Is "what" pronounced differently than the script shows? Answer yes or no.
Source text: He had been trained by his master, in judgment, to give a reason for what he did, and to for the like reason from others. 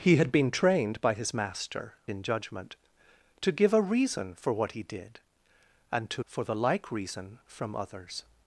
no